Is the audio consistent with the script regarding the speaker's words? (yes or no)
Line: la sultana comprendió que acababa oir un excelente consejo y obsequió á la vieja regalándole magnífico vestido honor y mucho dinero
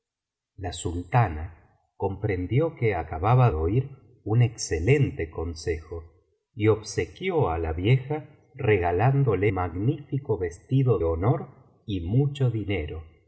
yes